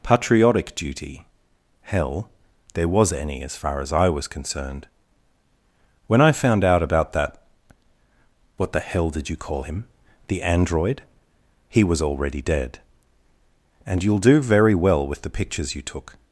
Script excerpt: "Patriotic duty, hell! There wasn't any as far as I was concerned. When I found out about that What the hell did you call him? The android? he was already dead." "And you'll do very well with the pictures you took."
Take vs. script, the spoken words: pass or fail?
fail